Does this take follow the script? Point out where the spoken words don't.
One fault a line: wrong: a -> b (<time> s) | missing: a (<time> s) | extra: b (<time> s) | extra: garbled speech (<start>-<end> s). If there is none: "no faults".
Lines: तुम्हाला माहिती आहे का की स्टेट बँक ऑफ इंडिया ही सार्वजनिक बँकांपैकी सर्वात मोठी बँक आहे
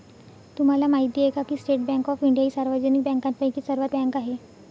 missing: मोठी (4.0 s)